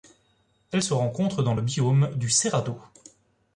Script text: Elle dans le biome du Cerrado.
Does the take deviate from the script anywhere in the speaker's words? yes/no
yes